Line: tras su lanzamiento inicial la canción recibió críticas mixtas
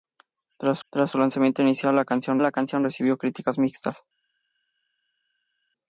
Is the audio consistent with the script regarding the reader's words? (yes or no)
no